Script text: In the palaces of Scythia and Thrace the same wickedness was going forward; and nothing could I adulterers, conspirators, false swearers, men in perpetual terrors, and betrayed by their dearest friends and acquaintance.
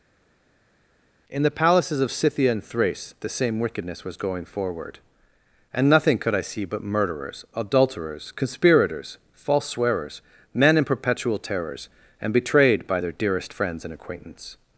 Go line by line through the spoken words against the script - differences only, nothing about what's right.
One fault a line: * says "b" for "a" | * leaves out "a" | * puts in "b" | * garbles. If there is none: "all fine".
* puts in "see but murderers"